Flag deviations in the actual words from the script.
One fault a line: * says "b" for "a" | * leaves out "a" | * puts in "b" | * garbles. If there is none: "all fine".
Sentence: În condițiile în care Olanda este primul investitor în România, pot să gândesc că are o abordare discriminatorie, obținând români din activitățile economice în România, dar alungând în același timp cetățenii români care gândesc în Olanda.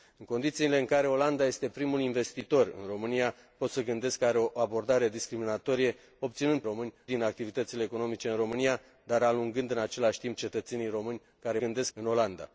all fine